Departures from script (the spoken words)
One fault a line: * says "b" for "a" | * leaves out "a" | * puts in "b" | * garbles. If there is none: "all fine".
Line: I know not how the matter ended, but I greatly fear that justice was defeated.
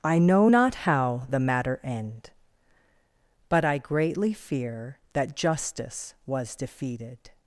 * says "end" for "ended"